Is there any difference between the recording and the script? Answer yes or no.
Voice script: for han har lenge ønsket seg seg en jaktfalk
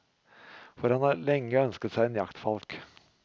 yes